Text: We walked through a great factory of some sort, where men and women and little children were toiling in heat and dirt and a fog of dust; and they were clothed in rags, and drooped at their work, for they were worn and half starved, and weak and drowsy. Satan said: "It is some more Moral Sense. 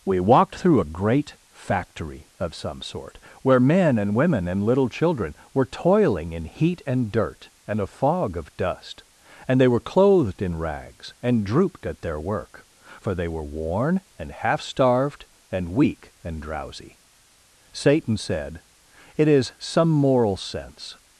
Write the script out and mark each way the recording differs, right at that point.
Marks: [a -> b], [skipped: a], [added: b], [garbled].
We walked through a great factory of some sort, where men and women and little children were toiling in heat and dirt and a fog of dust; and they were clothed in rags, and drooped at their work, for they were worn and half starved, and weak and drowsy. Satan said: "It is some [skipped: more] Moral Sense.